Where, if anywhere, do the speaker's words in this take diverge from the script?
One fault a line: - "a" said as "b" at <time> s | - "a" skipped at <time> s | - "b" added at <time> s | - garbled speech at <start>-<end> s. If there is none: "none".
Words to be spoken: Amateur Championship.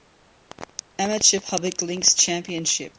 - "Public Links" added at 1.4 s